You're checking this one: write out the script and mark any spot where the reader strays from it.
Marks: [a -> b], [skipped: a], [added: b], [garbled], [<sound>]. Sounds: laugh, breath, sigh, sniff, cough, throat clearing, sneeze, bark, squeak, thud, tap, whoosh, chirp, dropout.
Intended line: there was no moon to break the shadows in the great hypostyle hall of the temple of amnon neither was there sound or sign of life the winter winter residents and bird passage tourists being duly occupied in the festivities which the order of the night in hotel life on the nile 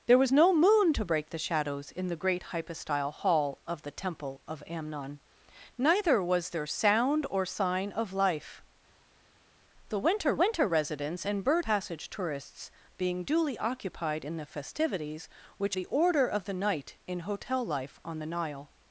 there was no moon to break the shadows in the great hypostyle hall of the temple of amnon neither was there sound or sign of life the winter winter residents and bird passage tourists being duly occupied in the festivities which the order of the night in hotel life on the nile